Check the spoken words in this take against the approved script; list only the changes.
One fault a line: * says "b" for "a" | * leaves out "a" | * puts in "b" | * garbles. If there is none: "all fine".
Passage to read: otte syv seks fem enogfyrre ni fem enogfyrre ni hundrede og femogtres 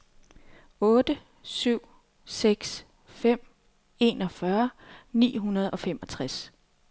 * leaves out "fem enogfyrre ni"